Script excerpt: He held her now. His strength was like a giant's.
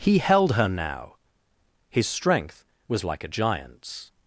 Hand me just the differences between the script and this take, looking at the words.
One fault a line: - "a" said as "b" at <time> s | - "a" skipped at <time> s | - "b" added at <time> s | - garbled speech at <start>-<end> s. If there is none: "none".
none